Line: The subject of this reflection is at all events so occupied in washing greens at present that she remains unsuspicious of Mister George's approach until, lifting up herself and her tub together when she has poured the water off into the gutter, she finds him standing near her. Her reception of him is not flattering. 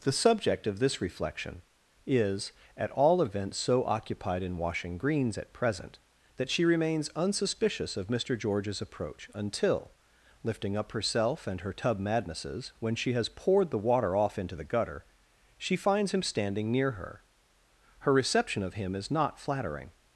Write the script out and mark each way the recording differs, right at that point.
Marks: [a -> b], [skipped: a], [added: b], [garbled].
The subject of this reflection is at all events so occupied in washing greens at present that she remains unsuspicious of Mister George's approach until, lifting up herself and her tub [together -> madnesses] when she has poured the water off into the gutter, she finds him standing near her. Her reception of him is not flattering.